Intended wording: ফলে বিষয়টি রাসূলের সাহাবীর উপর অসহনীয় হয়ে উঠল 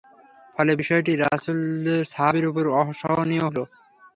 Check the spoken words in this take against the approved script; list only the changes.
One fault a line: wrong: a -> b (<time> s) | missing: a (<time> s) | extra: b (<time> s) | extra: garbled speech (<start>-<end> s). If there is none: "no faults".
missing: হয়ে (3.5 s)